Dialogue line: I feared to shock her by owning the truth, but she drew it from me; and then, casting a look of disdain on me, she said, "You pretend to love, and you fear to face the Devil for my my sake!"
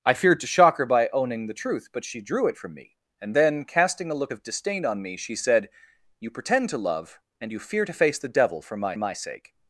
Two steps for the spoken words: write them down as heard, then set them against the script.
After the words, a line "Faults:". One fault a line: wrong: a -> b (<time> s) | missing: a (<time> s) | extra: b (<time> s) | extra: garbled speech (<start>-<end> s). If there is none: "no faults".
I feared to shock her by owning the truth, but she drew it from me; and then, casting a look of disdain on me, she said, "You pretend to love, and you fear to face the Devil for my my sake!"
Faults:
no faults